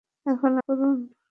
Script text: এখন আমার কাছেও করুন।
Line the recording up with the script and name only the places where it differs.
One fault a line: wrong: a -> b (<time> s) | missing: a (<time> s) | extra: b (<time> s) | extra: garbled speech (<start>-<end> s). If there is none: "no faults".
missing: আমার কাছেও (0.5 s)